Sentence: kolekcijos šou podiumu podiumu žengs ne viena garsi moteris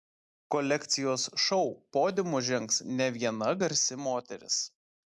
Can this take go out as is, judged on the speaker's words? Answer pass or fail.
fail